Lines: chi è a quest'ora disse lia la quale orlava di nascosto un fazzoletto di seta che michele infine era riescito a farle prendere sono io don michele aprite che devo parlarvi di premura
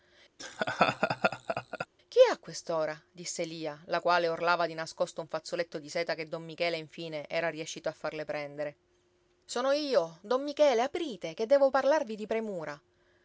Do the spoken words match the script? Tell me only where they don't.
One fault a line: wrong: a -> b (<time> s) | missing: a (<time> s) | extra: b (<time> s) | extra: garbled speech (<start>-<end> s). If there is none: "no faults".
extra: don (6.3 s)